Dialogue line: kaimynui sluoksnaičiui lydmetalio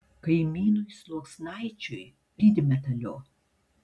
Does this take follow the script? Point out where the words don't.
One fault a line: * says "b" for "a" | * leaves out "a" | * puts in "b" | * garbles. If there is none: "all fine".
all fine